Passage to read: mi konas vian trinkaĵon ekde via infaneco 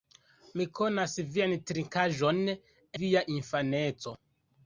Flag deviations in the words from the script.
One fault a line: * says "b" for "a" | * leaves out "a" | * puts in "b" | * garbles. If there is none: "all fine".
* leaves out "ekde"